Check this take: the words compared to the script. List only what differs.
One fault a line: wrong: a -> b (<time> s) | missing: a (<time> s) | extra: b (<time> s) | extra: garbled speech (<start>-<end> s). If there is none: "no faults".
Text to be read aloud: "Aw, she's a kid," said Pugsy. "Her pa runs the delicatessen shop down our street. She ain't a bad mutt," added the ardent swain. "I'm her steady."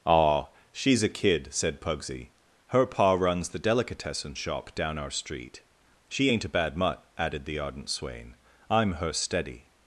no faults